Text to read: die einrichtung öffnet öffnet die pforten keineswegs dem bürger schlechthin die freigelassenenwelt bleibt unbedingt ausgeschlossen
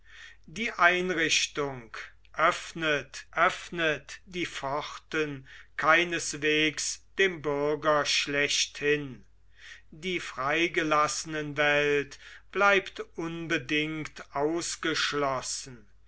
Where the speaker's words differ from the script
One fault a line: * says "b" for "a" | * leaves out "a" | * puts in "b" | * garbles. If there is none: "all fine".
all fine